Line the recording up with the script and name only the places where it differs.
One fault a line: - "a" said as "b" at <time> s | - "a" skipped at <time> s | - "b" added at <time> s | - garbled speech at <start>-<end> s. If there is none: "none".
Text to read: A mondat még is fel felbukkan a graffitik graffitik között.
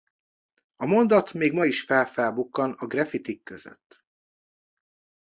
- "ma" added at 1.5 s
- "graffitik" skipped at 3.4 s